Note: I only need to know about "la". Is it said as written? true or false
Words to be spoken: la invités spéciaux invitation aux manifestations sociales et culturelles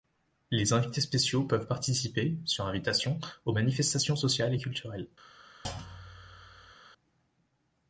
false